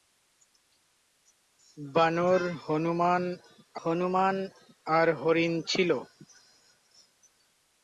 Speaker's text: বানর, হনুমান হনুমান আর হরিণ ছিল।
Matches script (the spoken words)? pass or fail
pass